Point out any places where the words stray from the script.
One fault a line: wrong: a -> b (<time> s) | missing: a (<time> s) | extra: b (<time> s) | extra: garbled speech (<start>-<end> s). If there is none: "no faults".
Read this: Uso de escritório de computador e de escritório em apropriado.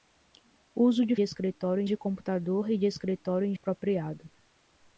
no faults